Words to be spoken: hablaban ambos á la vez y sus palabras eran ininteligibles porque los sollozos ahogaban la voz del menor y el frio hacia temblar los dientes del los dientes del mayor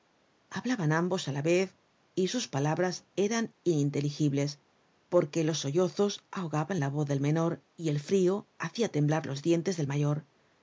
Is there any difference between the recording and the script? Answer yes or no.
yes